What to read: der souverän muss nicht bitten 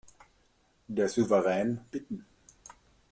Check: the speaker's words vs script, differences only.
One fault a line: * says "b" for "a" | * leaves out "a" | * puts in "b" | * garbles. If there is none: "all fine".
* leaves out "muss nicht"